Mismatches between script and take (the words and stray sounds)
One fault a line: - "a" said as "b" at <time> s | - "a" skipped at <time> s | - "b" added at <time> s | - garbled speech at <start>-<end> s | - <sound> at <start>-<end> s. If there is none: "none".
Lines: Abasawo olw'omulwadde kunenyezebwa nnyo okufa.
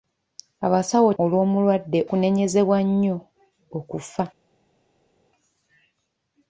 none